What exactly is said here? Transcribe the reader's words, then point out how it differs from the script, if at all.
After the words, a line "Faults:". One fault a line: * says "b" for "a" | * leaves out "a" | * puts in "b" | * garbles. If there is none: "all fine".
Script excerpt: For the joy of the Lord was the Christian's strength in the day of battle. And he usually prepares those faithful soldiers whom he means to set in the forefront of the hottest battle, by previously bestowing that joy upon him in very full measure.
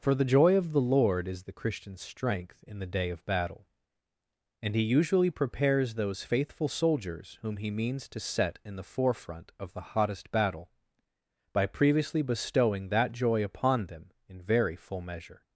For the joy of the Lord is the Christian's strength in the day of battle. And he usually prepares those faithful soldiers whom he means to set in the forefront of the hottest battle, by previously bestowing that joy upon them in very full measure.
Faults:
* says "is" for "was"
* says "them" for "him"